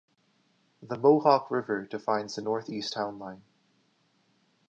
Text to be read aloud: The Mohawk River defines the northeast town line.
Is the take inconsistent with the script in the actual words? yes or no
no